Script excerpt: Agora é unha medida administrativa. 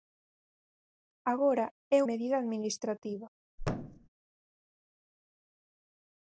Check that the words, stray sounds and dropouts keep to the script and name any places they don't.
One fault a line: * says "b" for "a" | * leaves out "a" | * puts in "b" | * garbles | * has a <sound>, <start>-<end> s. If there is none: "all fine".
* leaves out "unha"
* has a thud, 3.6-4.1 s